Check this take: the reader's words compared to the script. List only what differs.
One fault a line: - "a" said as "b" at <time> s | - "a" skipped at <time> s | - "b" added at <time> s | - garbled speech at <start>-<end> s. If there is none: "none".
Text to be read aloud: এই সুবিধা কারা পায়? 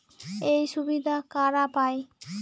none